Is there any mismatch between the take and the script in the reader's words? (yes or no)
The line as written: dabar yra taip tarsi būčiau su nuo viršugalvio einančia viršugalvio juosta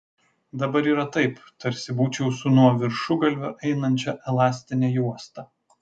yes